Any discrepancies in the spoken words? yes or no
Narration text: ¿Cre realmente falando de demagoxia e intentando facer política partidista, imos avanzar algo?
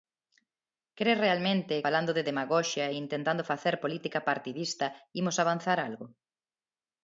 no